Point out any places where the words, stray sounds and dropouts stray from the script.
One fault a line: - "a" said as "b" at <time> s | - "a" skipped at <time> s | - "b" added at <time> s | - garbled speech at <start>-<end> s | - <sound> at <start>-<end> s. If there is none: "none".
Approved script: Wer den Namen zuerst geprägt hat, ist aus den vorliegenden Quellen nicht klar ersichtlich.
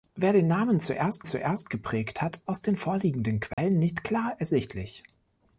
- "zuerst" added at 1.2 s
- "ist" skipped at 2.4 s
- dropout at 3.5-3.6 s